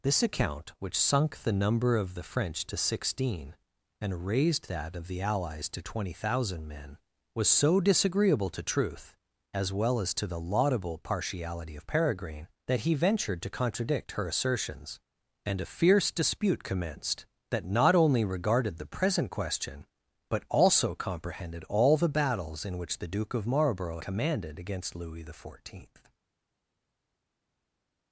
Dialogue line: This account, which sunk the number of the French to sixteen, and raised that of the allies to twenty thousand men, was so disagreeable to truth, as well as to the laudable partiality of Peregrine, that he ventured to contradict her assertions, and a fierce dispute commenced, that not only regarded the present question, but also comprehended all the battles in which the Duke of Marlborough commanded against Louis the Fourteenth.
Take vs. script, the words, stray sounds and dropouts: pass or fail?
pass